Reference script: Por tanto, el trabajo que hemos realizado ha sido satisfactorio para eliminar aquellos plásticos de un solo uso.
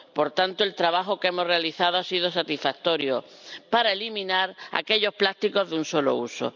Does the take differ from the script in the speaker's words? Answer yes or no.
no